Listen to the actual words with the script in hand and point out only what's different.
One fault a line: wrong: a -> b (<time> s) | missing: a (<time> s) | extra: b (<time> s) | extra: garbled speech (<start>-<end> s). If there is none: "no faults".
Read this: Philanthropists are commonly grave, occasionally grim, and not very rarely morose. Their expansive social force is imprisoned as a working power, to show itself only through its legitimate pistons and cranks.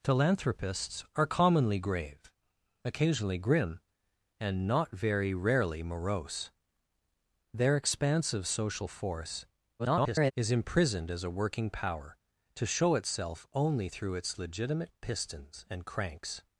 extra: garbled speech (9.8-10.3 s)